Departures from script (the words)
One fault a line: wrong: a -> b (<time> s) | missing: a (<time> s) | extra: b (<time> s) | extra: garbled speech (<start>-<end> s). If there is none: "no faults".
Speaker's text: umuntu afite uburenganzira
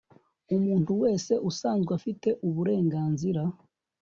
extra: wese usanzwe (1.0 s)